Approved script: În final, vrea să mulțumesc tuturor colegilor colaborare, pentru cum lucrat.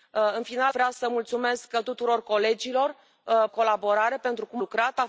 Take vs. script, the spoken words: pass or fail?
pass